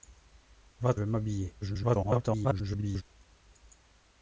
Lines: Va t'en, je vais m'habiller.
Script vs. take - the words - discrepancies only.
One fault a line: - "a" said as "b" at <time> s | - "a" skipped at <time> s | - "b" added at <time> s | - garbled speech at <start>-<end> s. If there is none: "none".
- "t'en je" skipped at 0.9 s
- garbled speech at 1.6-3.0 s